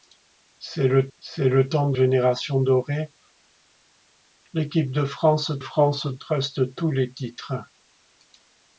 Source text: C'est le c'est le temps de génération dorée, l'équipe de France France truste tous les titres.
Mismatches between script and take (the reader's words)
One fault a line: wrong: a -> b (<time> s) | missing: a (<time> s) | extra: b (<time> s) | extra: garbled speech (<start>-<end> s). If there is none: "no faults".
no faults